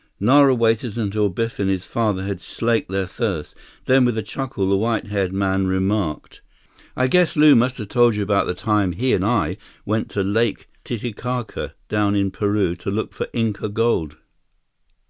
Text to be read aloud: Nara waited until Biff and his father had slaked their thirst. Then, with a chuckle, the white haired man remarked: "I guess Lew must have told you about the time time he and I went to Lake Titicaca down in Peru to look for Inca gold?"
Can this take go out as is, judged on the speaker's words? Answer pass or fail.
fail